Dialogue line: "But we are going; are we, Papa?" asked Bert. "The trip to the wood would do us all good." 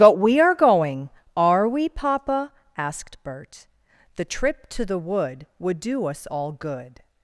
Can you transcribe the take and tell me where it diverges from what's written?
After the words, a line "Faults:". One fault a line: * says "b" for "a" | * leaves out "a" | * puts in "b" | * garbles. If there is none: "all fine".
"But we are going; are we, Papa?" asked Bert. "The trip to the wood would do us all good."
Faults:
all fine